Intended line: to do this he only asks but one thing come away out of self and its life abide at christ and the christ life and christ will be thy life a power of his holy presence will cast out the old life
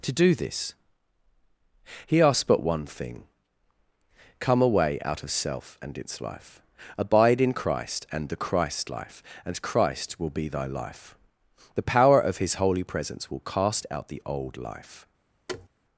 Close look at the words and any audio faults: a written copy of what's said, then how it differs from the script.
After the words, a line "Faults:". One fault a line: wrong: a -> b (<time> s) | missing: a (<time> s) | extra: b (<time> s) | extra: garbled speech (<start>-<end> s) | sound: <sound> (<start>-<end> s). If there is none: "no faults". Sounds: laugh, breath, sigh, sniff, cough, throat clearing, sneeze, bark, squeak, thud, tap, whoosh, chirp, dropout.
to do this he asks but one thing come away out of self and its life abide in christ and the christ life and christ will be thy life the power of his holy presence will cast out the old life
Faults:
missing: only (2.2 s)
wrong: at -> in (7.4 s)
wrong: a -> the (11.7 s)
sound: thud (15.5-15.7 s)